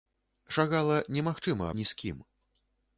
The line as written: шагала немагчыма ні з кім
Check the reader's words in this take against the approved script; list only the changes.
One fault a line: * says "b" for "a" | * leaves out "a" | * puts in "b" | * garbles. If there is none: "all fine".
all fine